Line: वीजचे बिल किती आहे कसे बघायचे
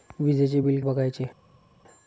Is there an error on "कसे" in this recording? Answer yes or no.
yes